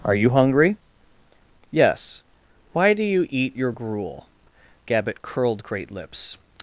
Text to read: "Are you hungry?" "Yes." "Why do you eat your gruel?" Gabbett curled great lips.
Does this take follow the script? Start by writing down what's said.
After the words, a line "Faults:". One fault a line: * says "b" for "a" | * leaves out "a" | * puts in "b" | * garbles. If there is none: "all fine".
"Are you hungry?" "Yes." "Why do you eat your gruel?" Gabbett curled great lips.
Faults:
all fine